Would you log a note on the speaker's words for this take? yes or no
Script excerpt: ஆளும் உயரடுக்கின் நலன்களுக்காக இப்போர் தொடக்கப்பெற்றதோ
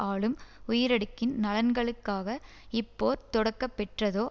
no